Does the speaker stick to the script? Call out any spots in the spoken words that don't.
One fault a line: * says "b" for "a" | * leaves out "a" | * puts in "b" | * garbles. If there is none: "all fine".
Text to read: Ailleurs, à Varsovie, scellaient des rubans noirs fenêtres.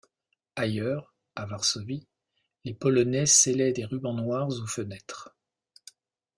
* puts in "les Polonais"
* puts in "aux"